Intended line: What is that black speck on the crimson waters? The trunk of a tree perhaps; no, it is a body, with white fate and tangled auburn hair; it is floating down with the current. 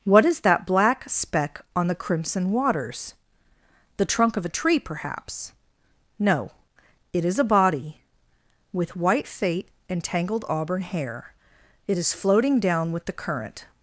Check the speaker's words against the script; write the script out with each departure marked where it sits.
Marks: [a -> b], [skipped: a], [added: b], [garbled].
What is that black speck on the crimson waters? The trunk of a tree perhaps; no, it is a body, with white fate and tangled auburn hair; it is floating down with the current.